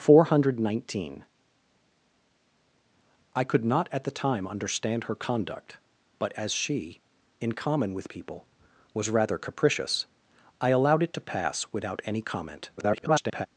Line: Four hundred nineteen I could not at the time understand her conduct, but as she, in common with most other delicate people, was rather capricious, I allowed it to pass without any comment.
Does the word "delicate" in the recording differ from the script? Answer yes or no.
yes